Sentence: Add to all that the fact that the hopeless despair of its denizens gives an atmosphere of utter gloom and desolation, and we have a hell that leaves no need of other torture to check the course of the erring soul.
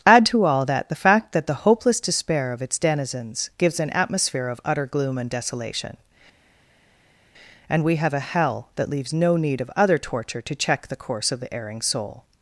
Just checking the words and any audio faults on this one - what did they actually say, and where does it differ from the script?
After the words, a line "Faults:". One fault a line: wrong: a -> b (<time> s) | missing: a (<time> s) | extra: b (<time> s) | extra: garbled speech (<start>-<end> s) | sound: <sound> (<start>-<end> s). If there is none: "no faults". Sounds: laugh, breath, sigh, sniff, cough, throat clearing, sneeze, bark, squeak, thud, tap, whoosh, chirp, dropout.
Add to all that the fact that the hopeless despair of its denizens gives an atmosphere of utter gloom and desolation, and we have a hell that leaves no need of other torture to check the course of the erring soul.
Faults:
no faults